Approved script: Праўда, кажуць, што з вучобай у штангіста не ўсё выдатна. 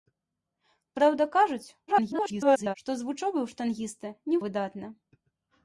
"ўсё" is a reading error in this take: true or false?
true